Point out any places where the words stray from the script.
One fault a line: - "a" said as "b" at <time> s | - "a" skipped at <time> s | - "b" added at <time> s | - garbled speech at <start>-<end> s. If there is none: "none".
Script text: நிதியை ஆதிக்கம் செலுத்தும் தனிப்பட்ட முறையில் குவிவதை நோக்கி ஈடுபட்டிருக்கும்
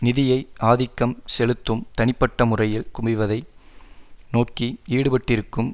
none